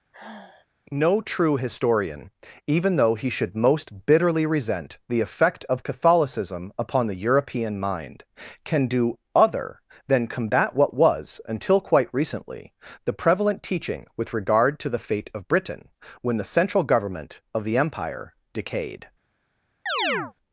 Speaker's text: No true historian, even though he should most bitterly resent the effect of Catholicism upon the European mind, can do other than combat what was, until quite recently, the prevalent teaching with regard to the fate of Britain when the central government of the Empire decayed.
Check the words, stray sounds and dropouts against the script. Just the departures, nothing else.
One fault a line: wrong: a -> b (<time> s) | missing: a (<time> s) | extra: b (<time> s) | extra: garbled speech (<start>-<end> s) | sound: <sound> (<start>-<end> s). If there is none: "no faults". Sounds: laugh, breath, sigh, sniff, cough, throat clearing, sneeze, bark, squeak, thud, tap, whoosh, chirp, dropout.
sound: sigh (0.1-0.7 s)
sound: chirp (19.9-20.3 s)